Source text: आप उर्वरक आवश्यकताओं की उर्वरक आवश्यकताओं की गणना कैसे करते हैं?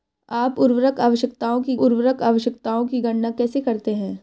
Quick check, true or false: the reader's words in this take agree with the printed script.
true